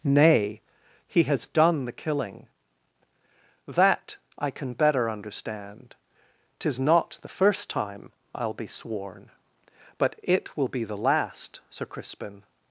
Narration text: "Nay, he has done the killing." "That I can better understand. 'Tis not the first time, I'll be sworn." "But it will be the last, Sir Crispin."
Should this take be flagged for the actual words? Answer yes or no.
no